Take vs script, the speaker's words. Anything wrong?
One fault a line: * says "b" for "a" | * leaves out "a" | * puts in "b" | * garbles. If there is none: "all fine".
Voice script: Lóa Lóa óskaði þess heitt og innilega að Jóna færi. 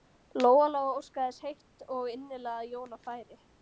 all fine